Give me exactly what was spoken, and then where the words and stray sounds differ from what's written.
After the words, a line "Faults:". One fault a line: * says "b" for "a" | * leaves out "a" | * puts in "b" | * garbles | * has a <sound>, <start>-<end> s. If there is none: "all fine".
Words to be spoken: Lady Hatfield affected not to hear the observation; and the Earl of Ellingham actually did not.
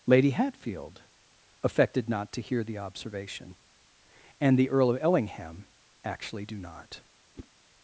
Lady Hatfield affected not to hear the observation; and the Earl of Ellingham actually do not.
Faults:
* says "do" for "did"
* has a whoosh, 7.3-7.5 s